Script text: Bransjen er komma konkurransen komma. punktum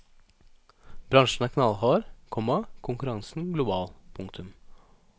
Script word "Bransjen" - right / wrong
right